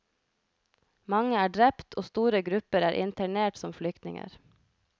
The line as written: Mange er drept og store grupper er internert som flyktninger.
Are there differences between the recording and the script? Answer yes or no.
no